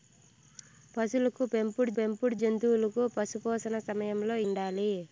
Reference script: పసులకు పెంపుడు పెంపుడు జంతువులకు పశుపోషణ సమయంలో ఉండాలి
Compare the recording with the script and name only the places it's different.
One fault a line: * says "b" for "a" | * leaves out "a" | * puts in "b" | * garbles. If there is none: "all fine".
all fine